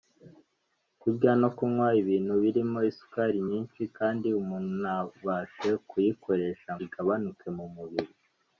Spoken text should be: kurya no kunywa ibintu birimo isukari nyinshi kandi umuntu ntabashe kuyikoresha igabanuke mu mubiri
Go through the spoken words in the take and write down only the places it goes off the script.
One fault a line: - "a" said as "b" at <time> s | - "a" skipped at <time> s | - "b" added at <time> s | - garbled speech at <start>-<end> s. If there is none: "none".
none